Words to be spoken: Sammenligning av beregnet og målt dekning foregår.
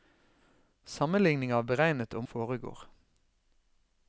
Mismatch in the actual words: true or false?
true